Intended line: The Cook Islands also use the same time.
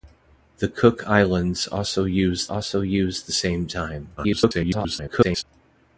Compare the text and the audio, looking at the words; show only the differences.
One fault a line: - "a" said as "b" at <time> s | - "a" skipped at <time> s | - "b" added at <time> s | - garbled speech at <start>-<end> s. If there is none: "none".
- "also use" added at 2.4 s
- garbled speech at 4.2-5.4 s